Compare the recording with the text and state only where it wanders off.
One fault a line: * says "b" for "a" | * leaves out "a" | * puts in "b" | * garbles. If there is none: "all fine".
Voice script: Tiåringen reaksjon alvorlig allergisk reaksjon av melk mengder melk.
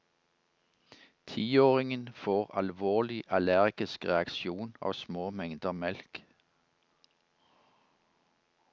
* says "får" for "reaksjon"
* says "små" for "melk"